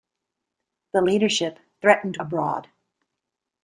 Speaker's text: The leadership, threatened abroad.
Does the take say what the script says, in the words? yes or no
yes